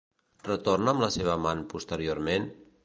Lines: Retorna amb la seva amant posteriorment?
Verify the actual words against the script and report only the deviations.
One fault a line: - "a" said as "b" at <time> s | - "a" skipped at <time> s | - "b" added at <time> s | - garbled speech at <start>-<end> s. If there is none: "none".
none